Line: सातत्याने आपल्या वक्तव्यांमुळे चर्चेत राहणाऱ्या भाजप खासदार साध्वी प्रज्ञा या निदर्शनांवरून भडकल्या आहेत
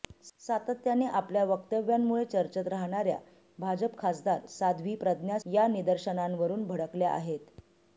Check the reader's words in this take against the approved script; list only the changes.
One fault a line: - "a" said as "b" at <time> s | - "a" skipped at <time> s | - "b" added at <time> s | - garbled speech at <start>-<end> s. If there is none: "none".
none